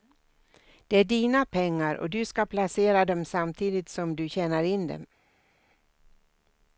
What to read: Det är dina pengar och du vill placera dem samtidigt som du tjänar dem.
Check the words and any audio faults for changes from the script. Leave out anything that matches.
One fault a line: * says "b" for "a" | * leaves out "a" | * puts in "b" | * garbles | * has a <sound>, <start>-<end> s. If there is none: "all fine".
* says "ska" for "vill"
* puts in "in"